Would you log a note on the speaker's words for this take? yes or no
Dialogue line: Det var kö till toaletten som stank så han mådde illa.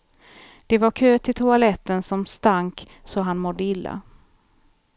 no